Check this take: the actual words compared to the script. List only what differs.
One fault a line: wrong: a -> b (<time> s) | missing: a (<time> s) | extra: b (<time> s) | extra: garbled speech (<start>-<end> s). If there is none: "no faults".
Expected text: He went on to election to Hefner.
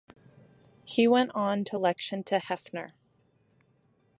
no faults